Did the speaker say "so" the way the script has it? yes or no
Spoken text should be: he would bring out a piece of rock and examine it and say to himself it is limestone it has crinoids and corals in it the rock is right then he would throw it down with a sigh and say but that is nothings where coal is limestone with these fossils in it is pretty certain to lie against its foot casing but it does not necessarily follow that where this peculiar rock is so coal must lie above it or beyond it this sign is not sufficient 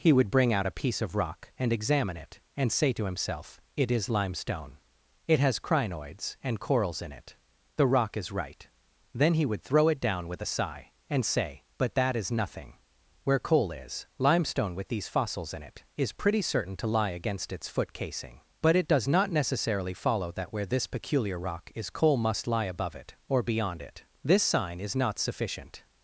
no